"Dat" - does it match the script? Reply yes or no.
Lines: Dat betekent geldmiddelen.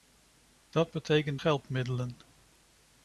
yes